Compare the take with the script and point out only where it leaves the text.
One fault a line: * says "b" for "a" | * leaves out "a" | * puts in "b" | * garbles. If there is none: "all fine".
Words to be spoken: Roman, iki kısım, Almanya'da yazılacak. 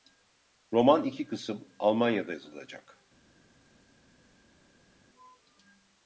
all fine